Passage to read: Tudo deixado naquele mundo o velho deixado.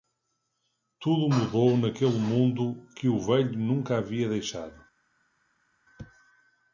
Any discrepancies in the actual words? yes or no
yes